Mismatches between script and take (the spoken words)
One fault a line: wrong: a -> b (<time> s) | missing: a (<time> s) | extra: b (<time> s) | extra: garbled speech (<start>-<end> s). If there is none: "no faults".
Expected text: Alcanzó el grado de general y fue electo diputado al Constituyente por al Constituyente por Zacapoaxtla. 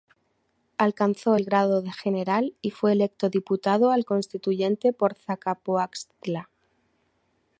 missing: al Constituyente por (5.1 s)